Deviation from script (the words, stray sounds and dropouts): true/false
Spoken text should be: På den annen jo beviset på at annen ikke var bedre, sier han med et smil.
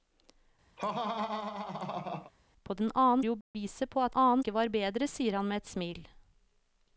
true